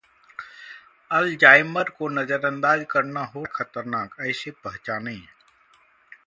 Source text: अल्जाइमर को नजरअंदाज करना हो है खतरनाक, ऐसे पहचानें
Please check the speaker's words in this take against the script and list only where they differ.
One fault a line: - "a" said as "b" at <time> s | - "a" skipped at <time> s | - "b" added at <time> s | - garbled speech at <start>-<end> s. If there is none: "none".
none